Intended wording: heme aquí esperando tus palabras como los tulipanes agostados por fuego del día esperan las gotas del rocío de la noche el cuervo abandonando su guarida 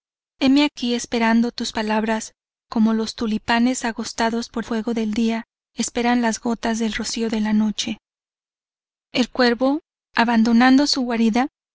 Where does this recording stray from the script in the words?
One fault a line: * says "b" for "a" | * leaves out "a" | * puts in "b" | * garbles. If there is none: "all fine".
all fine